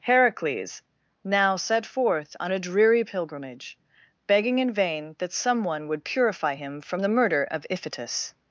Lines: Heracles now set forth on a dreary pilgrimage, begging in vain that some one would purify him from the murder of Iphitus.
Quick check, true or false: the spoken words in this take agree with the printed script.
true